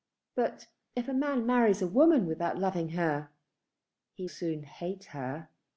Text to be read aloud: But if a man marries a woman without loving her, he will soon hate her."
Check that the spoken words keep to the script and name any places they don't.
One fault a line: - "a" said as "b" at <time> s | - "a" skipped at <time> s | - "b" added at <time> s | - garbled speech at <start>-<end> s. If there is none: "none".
- "will" skipped at 4.3 s